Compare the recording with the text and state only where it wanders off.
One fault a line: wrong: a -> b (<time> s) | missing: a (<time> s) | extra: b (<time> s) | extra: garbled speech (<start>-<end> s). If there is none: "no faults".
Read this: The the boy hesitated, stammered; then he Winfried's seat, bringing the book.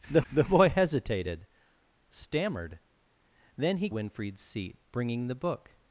no faults